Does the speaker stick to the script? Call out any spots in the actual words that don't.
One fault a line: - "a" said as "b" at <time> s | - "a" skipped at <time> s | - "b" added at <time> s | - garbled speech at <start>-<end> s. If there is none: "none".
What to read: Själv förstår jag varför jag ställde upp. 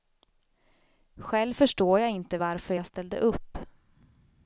- "inte" added at 2.1 s